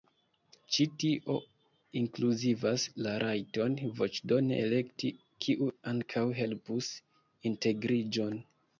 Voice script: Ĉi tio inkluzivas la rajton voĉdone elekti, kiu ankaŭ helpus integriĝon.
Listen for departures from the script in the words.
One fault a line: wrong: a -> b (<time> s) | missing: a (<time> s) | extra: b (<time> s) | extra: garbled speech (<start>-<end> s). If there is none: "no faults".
no faults